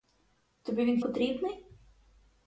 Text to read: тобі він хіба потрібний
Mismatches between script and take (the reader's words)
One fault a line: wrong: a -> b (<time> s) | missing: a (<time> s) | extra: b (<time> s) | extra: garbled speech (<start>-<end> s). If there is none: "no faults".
missing: хіба (1.0 s)